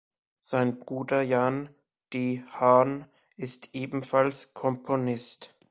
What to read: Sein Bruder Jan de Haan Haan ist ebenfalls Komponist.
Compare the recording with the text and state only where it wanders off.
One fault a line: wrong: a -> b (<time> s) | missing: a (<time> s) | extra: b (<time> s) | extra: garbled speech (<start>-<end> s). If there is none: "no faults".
missing: Haan (3.0 s)